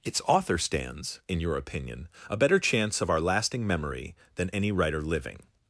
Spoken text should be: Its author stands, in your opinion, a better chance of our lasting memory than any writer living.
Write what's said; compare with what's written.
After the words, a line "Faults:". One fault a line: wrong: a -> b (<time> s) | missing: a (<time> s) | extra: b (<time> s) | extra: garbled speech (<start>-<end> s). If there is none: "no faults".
Its author stands, in your opinion, a better chance of our lasting memory than any writer living.
Faults:
no faults